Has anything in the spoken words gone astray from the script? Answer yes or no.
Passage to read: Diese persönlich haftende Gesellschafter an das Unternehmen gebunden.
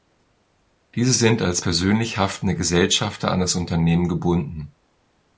yes